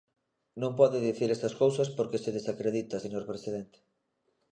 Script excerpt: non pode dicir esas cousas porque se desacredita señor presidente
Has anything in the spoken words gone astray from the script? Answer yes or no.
no